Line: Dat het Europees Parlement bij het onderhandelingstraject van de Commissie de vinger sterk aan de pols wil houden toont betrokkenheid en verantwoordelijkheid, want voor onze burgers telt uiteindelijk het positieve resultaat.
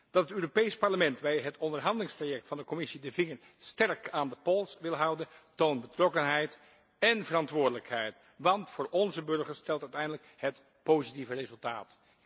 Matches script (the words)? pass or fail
pass